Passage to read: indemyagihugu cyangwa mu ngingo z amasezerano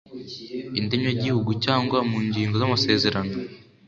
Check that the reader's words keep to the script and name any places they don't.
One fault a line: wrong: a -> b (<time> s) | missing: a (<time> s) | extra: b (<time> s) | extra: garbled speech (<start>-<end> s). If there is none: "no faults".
no faults